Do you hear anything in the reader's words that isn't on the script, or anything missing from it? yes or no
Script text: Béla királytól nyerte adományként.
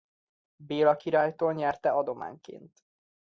no